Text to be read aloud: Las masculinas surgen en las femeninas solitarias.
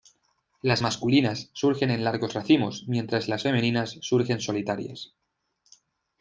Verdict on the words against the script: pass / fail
fail